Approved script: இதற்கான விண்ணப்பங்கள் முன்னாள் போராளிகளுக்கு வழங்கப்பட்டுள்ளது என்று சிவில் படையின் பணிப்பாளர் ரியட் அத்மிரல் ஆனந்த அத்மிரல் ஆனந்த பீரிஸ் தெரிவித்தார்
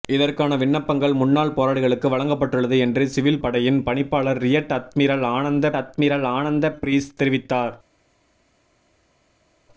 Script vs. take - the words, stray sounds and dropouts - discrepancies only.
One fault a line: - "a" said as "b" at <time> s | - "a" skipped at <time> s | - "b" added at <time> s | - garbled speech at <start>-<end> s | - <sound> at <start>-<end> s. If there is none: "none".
none